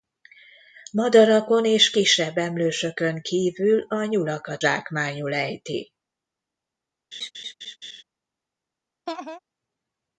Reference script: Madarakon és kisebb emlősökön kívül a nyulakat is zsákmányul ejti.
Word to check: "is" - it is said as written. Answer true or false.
false